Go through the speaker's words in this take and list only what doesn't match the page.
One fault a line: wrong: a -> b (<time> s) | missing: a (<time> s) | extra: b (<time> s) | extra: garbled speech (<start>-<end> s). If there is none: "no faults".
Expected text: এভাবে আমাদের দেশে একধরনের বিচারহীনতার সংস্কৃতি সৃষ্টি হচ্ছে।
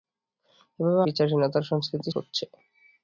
missing: আমাদের দেশে একধরনের (1.0 s)
missing: সৃষ্টি (2.1 s)